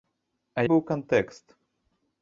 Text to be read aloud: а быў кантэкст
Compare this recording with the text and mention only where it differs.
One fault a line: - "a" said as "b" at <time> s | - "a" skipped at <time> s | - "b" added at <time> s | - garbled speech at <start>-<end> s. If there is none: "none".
none